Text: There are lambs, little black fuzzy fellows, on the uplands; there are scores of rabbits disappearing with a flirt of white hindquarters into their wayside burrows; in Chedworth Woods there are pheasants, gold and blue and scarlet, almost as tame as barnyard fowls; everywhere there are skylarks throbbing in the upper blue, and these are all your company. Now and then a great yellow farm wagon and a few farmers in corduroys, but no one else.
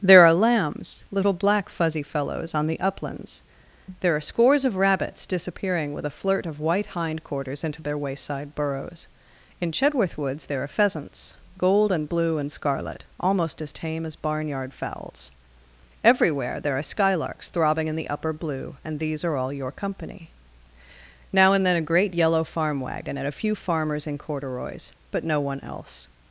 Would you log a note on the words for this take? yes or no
no